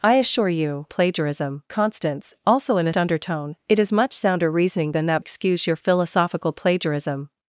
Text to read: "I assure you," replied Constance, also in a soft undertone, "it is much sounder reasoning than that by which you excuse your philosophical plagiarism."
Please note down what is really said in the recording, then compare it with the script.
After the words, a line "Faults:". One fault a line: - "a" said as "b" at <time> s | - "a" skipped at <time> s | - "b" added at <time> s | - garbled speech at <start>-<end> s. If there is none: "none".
"I assure you," plagiarism Constance, also in a undertone, "it is much sounder reasoning than that excuse your philosophical plagiarism."
Faults:
- "replied" said as "plagiarism" at 0.9 s
- "soft" skipped at 2.9 s
- "by which you" skipped at 5.2 s